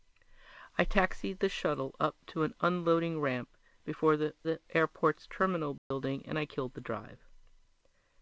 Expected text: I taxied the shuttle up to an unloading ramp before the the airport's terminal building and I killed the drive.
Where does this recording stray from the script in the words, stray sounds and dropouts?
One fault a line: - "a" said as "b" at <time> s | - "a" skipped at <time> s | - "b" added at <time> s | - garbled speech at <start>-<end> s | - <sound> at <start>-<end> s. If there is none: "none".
- dropout at 5.8-5.9 s